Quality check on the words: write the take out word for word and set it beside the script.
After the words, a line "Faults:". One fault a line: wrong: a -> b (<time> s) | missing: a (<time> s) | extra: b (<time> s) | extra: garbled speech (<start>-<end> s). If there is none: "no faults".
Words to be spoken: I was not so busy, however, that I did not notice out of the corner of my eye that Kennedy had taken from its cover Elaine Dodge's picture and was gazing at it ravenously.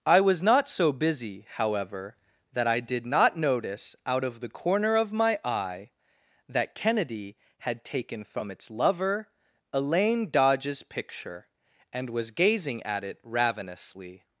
I was not so busy, however, that I did not notice out of the corner of my eye that Kennedy had taken from its lover Elaine Dodge's picture and was gazing at it ravenously.
Faults:
wrong: cover -> lover (8.7 s)